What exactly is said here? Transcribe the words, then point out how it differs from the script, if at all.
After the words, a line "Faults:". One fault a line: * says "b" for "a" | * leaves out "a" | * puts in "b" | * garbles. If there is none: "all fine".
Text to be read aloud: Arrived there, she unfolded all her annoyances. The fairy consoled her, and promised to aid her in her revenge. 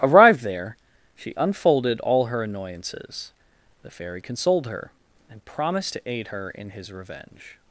Arrived there, she unfolded all her annoyances. The fairy consoled her, and promised to aid her in his revenge.
Faults:
* says "his" for "her"